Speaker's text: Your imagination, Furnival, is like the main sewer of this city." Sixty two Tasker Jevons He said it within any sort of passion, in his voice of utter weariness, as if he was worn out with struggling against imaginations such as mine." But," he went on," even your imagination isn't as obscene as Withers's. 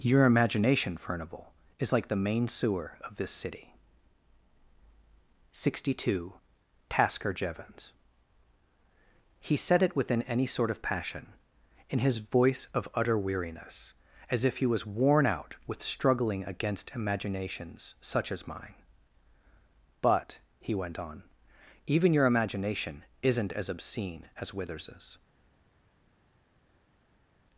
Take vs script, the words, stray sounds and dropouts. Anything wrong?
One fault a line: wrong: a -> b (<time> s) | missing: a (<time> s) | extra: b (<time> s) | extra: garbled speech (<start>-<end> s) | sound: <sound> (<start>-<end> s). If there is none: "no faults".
no faults